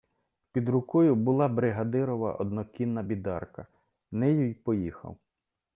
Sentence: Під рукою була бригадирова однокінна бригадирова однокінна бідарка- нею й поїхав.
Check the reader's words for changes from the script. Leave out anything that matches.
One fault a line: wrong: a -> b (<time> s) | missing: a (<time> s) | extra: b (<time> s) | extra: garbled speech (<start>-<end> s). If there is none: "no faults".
missing: бригадирова однокінна (3.0 s)